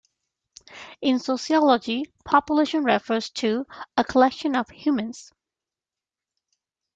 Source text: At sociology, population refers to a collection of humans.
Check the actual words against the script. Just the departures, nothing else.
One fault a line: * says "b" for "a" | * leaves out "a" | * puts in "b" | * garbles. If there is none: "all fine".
* says "In" for "At"